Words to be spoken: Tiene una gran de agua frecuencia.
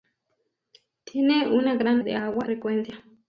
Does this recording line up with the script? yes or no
yes